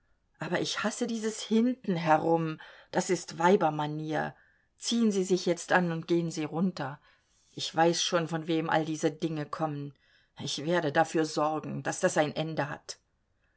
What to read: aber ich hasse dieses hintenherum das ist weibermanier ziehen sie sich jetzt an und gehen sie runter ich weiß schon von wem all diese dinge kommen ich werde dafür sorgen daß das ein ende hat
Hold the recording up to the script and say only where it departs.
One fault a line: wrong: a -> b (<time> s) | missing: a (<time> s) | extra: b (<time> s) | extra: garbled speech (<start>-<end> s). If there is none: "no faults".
no faults